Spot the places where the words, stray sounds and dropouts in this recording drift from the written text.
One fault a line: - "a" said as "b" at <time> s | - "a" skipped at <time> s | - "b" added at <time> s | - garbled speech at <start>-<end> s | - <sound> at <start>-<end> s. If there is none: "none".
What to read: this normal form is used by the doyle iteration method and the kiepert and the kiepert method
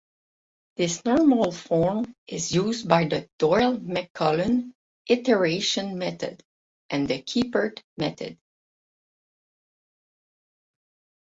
- "mcmullen" added at 3.8 s
- "and the kiepert" skipped at 7.8 s